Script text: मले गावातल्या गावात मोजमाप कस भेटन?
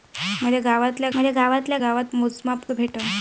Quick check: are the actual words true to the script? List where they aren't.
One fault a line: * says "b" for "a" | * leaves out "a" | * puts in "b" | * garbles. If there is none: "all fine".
* puts in "मले गावातल्या"
* leaves out "कस"